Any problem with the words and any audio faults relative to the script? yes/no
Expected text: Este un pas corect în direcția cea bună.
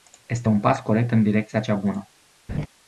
yes